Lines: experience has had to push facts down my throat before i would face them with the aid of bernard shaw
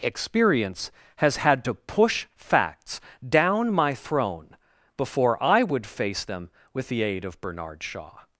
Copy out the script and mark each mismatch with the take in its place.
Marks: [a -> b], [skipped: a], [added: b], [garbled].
experience has had to push facts down my [throat -> throne] before i would face them with the aid of bernard shaw